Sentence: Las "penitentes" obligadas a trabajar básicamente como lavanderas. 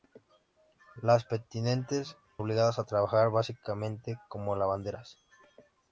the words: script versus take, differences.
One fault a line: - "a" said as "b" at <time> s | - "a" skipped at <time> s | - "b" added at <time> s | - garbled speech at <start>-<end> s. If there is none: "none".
none